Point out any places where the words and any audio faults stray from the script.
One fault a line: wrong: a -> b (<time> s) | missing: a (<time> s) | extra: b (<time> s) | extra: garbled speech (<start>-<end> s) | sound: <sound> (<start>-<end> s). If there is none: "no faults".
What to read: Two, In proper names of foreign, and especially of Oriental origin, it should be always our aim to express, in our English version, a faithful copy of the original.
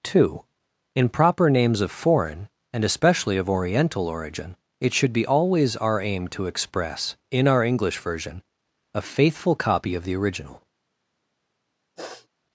sound: sniff (12.0-12.3 s)